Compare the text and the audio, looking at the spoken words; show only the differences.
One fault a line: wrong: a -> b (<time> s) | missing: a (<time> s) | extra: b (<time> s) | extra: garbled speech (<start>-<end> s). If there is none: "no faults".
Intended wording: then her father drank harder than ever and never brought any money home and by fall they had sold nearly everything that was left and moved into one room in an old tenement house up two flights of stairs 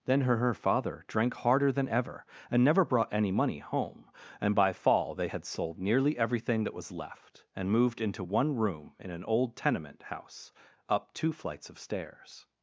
extra: her (0.4 s)